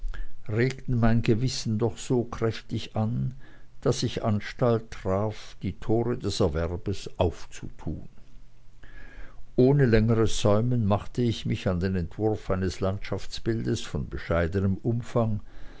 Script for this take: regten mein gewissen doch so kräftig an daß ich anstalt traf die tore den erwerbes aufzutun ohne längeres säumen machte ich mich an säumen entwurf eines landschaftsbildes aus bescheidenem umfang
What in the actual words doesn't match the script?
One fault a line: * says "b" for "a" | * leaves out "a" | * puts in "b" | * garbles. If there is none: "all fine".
* says "des" for "den"
* says "den" for "säumen"
* says "von" for "aus"